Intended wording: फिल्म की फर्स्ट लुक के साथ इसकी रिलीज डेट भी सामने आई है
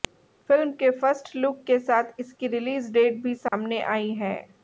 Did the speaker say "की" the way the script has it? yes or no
no